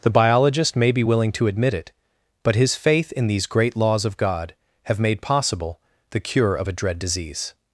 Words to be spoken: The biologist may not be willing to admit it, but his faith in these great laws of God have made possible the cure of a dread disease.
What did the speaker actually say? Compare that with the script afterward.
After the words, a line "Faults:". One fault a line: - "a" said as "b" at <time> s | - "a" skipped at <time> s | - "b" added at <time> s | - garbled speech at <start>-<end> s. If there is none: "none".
The biologist may be willing to admit it, but his faith in these great laws of God have made possible the cure of a dread disease.
Faults:
- "not" skipped at 0.9 s